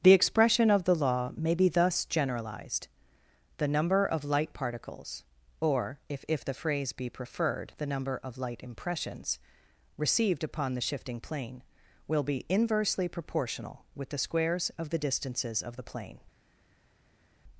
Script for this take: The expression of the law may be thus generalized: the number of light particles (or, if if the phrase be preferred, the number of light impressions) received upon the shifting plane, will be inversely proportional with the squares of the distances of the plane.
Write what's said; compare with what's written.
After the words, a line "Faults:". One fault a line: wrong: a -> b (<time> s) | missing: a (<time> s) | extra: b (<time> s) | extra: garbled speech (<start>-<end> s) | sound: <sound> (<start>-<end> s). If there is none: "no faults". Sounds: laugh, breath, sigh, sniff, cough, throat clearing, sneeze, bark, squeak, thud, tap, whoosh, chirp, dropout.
The expression of the law may be thus generalized: the number of light particles (or, if if the phrase be preferred, the number of light impressions) received upon the shifting plane, will be inversely proportional with the squares of the distances of the plane.
Faults:
no faults